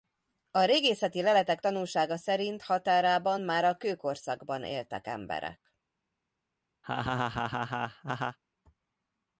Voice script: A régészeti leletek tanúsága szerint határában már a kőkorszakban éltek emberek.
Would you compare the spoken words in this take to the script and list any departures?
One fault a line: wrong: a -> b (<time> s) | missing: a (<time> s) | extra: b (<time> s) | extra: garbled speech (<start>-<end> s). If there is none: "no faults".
no faults